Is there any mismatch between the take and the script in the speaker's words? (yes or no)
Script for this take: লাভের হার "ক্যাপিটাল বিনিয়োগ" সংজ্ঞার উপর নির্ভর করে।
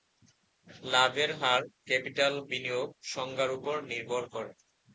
no